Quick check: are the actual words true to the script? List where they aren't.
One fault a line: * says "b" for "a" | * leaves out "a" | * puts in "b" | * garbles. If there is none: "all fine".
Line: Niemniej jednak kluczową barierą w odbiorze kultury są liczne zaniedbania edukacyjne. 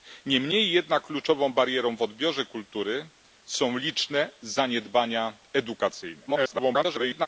* garbles